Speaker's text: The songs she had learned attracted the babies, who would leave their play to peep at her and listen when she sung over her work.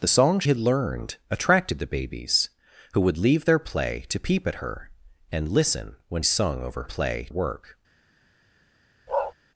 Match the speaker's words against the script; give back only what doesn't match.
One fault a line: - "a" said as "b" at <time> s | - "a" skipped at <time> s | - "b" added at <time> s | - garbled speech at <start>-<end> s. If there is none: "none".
- "she" skipped at 0.4 s
- "she" skipped at 6.2 s
- "her" said as "play" at 6.8 s